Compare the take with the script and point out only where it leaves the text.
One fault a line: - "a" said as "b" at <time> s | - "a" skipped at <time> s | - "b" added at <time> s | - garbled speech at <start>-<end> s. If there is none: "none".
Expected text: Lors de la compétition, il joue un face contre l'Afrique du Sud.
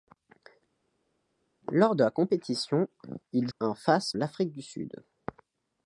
- "joue" skipped at 3.5 s
- "contre" skipped at 4.1 s